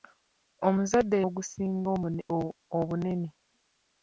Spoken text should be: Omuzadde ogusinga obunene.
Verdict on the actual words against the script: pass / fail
pass